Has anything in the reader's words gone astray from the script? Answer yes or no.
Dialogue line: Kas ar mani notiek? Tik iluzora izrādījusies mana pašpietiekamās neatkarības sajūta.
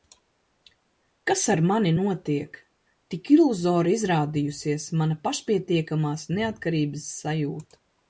no